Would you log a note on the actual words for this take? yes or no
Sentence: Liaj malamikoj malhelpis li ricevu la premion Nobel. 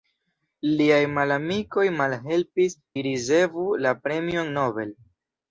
no